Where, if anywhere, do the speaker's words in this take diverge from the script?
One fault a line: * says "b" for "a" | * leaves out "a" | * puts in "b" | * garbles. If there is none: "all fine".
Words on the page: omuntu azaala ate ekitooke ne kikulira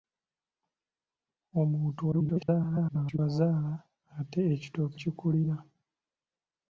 * garbles
* leaves out "ne"